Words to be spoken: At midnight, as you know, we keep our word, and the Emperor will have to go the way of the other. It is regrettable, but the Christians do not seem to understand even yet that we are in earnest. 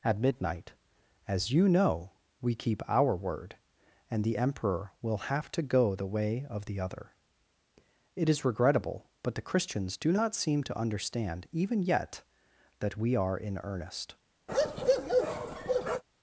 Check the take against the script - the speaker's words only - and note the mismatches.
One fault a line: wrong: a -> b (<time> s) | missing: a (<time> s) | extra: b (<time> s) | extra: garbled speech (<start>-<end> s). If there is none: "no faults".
no faults